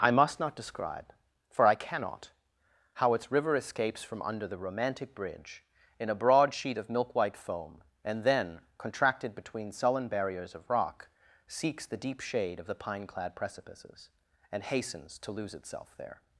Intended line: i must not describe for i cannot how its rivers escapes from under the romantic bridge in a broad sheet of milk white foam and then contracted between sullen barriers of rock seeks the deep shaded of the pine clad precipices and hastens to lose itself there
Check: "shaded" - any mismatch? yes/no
yes